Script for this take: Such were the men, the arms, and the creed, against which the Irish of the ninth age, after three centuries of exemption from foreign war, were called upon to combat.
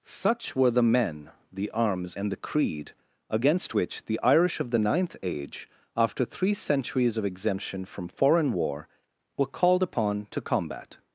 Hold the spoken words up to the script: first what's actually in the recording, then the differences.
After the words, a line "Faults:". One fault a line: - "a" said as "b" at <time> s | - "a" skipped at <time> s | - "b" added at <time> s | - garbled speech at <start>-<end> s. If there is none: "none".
Such were the men, the arms, and the creed, against which the Irish of the ninth age, after three centuries of exemption from foreign war, were called upon to combat.
Faults:
none